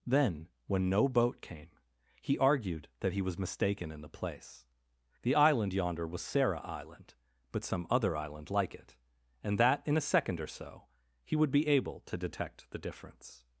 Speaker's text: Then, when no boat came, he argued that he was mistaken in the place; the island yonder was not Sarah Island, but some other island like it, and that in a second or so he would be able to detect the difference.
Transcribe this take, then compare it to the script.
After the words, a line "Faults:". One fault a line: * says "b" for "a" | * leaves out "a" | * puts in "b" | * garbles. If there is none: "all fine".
Then, when no boat came, he argued that he was mistaken in the place; the island yonder was Sarah Island, but some other island like it, and that in a second or so he would be able to detect the difference.
Faults:
* leaves out "not"